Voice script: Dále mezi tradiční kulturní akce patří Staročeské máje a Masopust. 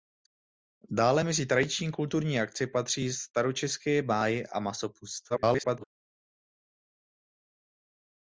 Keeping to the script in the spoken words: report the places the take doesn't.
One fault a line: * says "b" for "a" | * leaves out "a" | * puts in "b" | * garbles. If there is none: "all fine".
* garbles